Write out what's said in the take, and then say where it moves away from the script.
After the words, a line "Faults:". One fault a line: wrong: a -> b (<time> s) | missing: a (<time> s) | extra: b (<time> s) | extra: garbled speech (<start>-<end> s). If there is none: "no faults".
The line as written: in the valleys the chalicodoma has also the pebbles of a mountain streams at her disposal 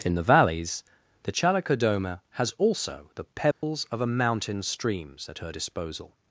in the valleys the chalicodoma has also the pebbles of a mountain streams at her disposal
Faults:
no faults